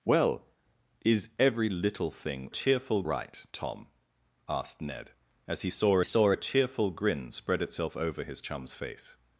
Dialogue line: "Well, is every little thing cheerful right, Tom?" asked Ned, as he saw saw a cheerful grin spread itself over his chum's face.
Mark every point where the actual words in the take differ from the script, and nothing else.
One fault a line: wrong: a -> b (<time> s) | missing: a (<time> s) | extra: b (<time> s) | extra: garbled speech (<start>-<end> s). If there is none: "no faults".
no faults